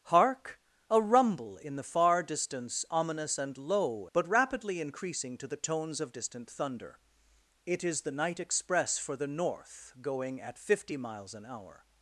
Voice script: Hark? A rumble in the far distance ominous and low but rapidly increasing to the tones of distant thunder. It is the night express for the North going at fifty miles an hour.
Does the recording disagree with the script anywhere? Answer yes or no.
no